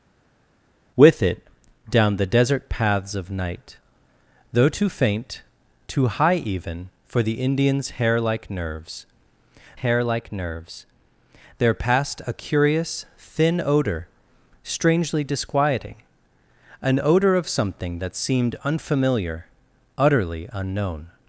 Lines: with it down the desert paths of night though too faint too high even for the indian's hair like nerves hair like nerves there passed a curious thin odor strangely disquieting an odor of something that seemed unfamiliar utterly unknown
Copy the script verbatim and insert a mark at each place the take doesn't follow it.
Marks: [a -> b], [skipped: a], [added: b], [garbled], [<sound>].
with it down the desert paths of night though too faint too high even for the indian's hair like nerves hair like nerves there passed a curious thin odor strangely disquieting an odor of something that seemed unfamiliar utterly unknown